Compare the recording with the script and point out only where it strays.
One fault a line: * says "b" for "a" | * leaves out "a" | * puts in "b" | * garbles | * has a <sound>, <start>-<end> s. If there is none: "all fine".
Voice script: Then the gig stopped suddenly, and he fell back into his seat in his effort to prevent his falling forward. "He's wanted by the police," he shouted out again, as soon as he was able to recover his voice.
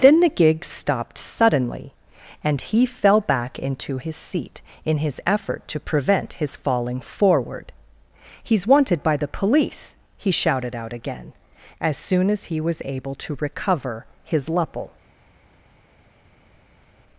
* says "lupple" for "voice"